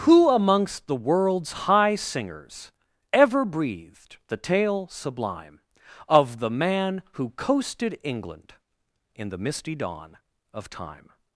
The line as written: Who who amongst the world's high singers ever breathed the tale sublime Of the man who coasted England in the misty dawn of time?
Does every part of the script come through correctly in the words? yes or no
no